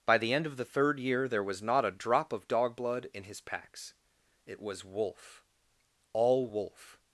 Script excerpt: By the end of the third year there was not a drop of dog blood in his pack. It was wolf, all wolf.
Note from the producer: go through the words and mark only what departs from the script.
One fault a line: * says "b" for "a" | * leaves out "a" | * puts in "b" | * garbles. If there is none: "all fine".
* says "packs" for "pack"